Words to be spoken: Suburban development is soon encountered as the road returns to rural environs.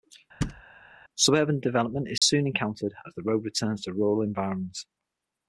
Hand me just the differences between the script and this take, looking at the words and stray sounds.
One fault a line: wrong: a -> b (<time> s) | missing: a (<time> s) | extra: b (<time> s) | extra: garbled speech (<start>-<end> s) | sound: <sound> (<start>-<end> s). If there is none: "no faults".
sound: thud (0.4-0.6 s)
sound: dropout (2.2-2.2 s)